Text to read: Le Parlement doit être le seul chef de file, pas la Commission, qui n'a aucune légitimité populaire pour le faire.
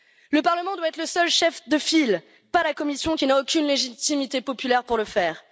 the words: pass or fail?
pass